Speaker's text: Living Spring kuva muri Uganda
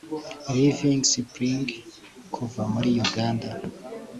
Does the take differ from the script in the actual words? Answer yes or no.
no